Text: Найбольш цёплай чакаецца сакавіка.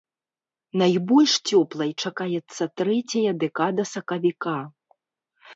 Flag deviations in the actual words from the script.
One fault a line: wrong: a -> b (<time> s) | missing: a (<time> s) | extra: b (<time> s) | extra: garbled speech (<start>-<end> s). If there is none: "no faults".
extra: трэцяя дэкада (2.8 s)